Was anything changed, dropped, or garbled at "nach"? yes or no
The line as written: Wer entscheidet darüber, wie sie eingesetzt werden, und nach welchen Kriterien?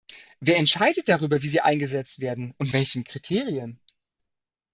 yes